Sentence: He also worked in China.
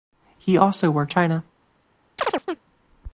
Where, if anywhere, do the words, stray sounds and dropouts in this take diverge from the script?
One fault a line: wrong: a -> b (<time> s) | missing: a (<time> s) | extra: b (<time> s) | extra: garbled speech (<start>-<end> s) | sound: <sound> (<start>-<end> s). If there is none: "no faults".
missing: in (1.1 s)
sound: chirp (2.2-2.6 s)